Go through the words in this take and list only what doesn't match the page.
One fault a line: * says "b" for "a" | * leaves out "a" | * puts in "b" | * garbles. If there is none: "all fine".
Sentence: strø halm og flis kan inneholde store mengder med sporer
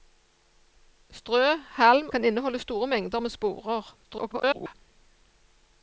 * leaves out "og flis"
* garbles